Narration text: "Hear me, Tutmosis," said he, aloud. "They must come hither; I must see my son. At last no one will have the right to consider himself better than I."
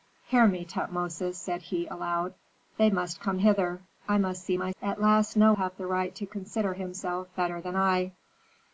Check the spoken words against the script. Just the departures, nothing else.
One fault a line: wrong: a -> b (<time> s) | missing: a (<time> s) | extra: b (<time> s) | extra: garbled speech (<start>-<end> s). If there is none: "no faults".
missing: son (4.7 s)
missing: one will (5.5 s)